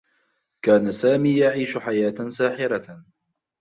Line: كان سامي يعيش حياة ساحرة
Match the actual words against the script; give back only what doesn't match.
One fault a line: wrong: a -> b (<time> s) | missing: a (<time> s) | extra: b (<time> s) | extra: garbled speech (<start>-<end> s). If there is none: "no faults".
no faults